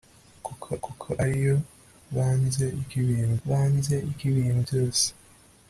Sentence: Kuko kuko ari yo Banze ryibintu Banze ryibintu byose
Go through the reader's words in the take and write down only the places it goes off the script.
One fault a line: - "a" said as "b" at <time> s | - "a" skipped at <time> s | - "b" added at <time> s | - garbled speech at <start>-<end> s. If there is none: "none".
none